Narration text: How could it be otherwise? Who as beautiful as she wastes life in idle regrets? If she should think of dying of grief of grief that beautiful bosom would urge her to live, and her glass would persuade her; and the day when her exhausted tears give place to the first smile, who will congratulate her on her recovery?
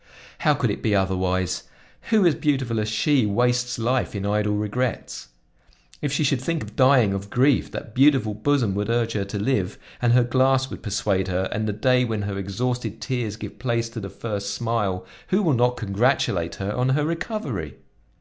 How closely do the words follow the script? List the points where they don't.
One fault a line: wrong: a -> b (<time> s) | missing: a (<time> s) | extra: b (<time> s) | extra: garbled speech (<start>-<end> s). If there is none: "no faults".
missing: of grief (7.7 s)
extra: not (15.5 s)